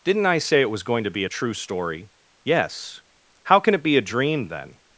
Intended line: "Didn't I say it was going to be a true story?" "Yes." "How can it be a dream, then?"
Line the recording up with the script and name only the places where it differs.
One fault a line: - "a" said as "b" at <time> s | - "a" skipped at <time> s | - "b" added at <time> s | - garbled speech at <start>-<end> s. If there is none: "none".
none